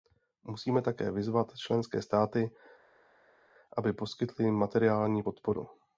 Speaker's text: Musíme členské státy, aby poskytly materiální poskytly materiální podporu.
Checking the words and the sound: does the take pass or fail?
fail